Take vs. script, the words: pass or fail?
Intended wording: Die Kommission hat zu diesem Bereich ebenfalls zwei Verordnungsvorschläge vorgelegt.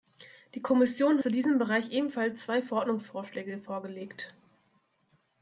fail